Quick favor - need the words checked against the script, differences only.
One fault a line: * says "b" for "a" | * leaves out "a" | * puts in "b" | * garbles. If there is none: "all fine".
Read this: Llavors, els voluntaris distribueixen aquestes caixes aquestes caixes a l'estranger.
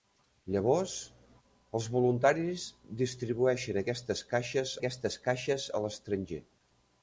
all fine